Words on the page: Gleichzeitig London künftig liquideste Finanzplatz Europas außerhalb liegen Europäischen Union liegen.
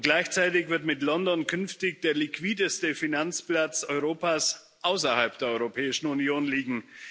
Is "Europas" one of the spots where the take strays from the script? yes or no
no